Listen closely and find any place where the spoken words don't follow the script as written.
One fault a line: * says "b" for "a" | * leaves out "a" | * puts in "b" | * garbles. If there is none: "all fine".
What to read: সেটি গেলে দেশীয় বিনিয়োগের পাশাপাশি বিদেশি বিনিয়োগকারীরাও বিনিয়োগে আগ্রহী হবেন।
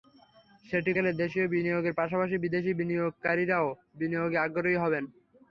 all fine